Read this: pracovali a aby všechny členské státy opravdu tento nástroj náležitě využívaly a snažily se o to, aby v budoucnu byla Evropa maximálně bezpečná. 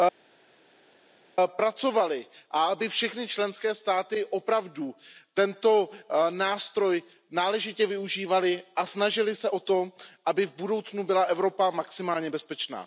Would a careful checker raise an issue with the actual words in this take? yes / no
no